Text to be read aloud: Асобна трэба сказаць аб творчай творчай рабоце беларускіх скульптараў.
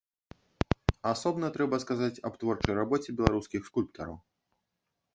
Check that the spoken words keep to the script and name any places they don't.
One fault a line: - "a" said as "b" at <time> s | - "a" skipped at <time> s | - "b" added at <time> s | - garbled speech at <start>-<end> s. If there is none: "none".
- "творчай" skipped at 2.7 s